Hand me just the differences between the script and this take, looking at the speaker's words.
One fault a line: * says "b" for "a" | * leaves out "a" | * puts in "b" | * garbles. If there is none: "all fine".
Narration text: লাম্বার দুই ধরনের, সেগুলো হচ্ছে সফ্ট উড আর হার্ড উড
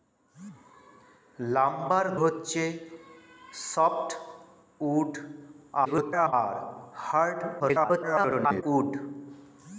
* leaves out "দুই ধরনের সেগুলো"
* garbles
* garbles